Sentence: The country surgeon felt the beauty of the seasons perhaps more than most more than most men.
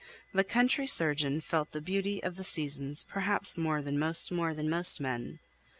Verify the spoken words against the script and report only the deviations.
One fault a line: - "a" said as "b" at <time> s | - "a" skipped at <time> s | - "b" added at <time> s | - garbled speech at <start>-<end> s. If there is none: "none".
none